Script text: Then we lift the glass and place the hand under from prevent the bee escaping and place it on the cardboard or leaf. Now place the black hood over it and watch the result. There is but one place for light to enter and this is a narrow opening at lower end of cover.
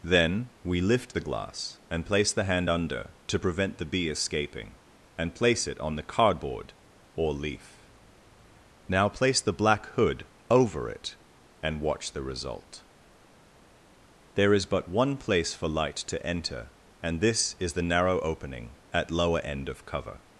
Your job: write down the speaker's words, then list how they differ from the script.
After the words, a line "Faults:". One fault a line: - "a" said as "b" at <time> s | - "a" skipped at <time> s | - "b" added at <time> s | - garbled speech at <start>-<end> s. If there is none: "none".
Then we lift the glass and place the hand under to prevent the bee escaping and place it on the cardboard or leaf. Now place the black hood over it and watch the result. There is but one place for light to enter and this is the narrow opening at lower end of cover.
Faults:
- "from" said as "to" at 3.3 s
- "a" said as "the" at 17.7 s